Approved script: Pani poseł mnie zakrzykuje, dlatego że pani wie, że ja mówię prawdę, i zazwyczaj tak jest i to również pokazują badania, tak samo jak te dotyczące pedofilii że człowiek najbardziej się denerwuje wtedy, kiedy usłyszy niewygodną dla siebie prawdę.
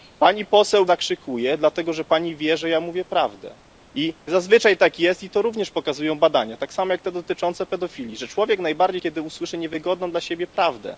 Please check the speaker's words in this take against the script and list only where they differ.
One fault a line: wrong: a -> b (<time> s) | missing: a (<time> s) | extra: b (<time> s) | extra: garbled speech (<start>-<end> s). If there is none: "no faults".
missing: mnie (0.8 s)
missing: się denerwuje wtedy (9.0 s)